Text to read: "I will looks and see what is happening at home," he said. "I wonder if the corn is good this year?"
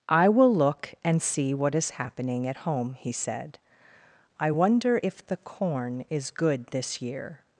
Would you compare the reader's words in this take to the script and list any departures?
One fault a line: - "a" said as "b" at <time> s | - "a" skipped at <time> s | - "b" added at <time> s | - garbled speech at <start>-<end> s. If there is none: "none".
- "looks" said as "look" at 0.5 s